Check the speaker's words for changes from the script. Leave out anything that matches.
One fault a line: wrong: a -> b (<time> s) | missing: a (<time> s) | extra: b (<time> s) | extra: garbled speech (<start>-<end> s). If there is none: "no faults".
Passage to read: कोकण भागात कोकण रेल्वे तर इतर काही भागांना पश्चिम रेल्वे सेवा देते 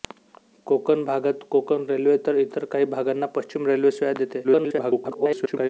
extra: garbled speech (4.4-5.7 s)